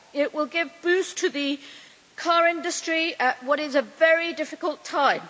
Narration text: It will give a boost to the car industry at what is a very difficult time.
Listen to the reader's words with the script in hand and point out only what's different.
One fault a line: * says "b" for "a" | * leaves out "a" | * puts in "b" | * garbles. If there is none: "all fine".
all fine